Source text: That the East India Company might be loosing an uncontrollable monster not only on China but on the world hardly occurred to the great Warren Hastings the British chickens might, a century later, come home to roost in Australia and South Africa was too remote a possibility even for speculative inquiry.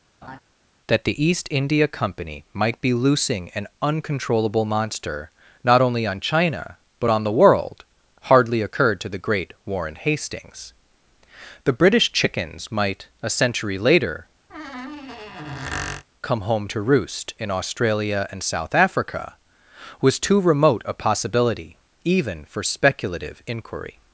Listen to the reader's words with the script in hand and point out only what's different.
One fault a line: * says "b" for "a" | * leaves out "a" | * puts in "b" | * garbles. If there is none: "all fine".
all fine